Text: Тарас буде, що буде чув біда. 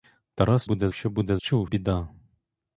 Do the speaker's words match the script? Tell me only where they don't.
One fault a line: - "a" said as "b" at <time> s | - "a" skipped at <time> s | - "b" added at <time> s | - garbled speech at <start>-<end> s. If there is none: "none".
none